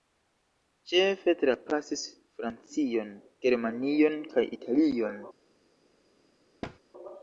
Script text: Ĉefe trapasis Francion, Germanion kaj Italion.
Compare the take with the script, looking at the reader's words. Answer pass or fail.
pass